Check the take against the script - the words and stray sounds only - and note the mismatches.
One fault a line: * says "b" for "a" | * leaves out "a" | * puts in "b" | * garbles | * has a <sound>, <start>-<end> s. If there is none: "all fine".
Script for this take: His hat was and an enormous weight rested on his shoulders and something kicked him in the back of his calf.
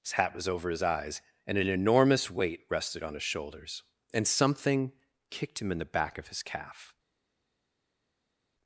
* puts in "over his eyes"